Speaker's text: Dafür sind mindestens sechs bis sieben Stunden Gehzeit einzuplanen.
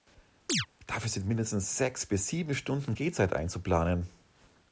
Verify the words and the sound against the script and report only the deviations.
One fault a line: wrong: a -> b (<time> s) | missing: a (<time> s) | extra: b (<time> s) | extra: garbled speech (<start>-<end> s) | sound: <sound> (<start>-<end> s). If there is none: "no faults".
sound: chirp (0.5-0.7 s)